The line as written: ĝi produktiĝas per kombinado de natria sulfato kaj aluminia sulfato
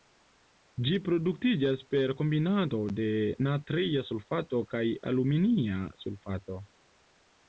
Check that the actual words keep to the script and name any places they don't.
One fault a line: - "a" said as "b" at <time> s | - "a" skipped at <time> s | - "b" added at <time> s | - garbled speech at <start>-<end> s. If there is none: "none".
none